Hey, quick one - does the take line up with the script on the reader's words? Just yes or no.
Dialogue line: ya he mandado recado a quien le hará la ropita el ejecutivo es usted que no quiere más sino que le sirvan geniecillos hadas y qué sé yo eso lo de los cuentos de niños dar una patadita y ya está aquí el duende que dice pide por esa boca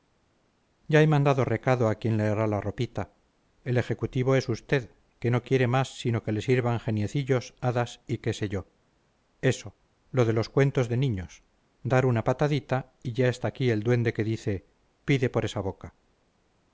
yes